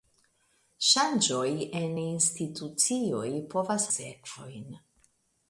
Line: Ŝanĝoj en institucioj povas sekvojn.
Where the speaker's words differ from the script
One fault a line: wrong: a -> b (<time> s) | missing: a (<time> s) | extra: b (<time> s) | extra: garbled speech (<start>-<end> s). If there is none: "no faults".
no faults